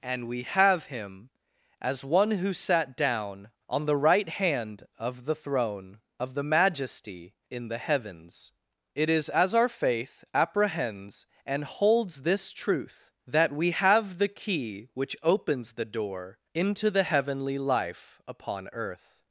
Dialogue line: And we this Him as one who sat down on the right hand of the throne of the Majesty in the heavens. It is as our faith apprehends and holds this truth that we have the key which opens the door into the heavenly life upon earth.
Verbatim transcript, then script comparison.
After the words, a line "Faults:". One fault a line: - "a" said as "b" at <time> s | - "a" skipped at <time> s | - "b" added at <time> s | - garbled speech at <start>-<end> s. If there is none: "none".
And we have Him as one who sat down on the right hand of the throne of the Majesty in the heavens. It is as our faith apprehends and holds this truth that we have the key which opens the door into the heavenly life upon earth.
Faults:
- "this" said as "have" at 0.4 s